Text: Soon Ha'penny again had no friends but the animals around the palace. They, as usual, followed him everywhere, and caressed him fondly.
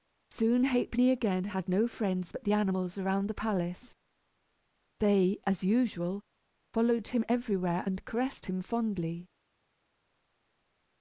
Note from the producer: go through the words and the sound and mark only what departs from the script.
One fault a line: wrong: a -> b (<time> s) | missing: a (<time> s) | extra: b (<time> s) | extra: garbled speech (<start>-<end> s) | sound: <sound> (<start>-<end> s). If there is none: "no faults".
no faults